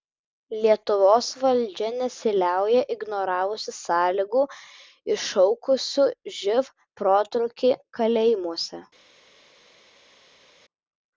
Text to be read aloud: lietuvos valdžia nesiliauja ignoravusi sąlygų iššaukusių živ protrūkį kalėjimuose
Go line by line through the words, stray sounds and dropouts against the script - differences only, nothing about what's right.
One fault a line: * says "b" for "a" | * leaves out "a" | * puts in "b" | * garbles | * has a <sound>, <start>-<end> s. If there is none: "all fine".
all fine